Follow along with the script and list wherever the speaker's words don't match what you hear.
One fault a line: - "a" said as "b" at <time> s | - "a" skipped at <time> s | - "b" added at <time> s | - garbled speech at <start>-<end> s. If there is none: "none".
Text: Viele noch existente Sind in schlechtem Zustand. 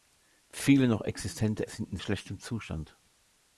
none